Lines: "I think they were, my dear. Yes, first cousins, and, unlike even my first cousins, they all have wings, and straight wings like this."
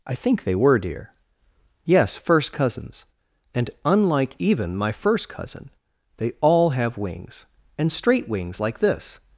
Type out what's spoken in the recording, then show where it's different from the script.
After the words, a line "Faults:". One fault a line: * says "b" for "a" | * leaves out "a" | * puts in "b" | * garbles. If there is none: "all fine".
"I think they were, dear. Yes, first cousins, and, unlike even my first cousin, they all have wings, and straight wings like this."
Faults:
* leaves out "my"
* says "cousin" for "cousins"